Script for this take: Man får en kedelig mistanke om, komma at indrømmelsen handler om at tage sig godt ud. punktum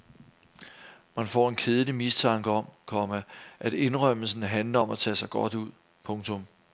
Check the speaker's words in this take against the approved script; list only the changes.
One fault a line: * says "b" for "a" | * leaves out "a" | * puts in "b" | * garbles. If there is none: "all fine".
all fine